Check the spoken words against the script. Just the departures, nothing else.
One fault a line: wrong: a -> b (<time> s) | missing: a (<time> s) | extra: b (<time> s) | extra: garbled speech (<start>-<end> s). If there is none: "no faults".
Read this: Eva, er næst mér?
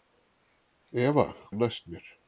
no faults